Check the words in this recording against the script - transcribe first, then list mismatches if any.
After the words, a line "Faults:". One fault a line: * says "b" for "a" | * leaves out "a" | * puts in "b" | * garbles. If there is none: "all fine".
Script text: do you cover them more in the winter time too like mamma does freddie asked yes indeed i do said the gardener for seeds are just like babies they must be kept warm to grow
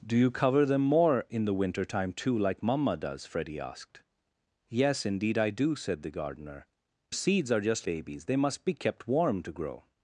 do you cover them more in the winter time too like mamma does freddie asked yes indeed i do said the gardener seeds are just babies they must be kept warm to grow
Faults:
* leaves out "for"
* leaves out "like"